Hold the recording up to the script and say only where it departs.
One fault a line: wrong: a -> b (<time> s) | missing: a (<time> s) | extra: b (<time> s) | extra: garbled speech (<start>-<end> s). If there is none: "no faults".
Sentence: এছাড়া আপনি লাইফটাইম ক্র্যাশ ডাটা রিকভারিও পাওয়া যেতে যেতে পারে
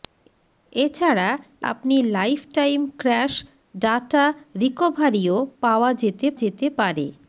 no faults